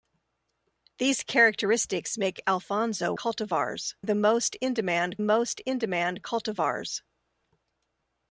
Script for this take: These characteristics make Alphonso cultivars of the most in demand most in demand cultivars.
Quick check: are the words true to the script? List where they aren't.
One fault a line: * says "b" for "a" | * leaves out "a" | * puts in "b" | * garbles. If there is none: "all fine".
all fine